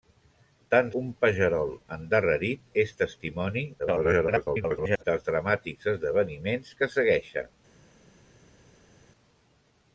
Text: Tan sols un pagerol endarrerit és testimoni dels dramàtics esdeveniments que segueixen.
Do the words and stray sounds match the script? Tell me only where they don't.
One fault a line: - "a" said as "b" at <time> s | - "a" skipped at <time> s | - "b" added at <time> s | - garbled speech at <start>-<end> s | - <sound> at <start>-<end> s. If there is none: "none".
- "sols" skipped at 0.9 s
- garbled speech at 3.8-5.0 s